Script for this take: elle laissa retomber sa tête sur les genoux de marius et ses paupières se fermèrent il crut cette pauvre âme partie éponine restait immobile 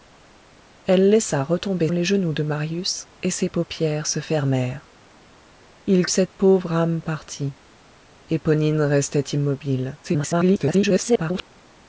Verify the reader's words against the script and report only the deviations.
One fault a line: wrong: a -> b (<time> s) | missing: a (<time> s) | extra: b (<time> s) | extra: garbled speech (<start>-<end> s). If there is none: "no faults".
missing: sa tête sur (1.9 s)
missing: crut (6.1 s)
extra: garbled speech (10.0-11.5 s)